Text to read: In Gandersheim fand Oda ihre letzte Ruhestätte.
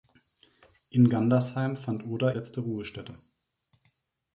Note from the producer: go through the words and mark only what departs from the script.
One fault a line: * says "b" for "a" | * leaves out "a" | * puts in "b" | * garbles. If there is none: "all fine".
* leaves out "ihre"